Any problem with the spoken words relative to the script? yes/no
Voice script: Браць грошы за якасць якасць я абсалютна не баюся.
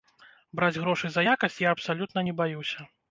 yes